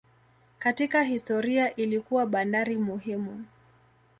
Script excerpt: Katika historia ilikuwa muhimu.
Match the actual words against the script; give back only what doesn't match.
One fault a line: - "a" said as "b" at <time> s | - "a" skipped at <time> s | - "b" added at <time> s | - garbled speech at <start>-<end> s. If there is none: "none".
- "bandari" added at 2.2 s